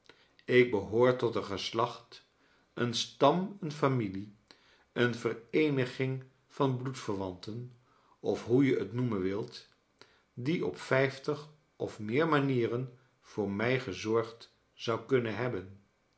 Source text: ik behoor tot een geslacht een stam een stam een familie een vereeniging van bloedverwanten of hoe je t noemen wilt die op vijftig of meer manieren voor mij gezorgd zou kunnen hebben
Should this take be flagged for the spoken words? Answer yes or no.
yes